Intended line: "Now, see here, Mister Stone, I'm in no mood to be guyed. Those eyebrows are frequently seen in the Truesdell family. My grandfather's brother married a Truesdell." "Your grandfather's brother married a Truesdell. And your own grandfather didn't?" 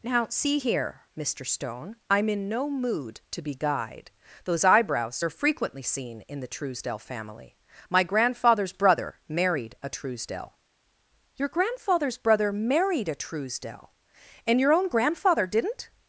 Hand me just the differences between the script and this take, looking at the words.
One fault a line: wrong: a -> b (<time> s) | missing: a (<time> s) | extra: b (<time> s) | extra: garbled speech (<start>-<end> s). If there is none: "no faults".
no faults